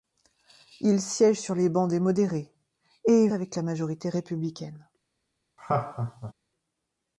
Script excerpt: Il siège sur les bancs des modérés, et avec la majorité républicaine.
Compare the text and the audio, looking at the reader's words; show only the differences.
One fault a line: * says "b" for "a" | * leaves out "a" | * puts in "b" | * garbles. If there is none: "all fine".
all fine